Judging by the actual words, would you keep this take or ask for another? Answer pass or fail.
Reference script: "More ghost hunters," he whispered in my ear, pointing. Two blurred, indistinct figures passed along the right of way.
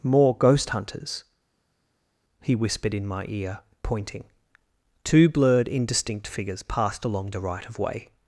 pass